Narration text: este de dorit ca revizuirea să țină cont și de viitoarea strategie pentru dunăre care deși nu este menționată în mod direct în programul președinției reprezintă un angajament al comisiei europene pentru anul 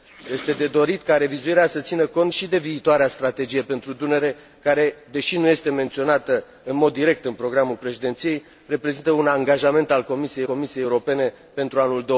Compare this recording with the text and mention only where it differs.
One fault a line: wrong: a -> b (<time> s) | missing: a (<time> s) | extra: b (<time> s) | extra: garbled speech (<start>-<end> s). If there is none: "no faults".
extra: comisiei (10.4 s)